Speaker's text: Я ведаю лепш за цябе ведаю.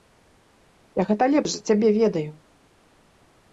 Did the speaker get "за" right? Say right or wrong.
right